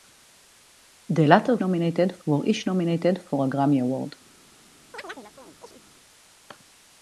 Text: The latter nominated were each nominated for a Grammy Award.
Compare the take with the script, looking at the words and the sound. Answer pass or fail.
fail